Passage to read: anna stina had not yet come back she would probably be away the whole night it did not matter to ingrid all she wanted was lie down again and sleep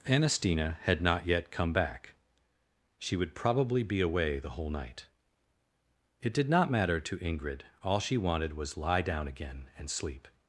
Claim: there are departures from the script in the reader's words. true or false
false